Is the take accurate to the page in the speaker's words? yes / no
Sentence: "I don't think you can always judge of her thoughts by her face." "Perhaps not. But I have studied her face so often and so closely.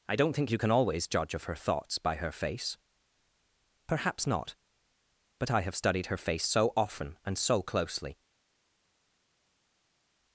yes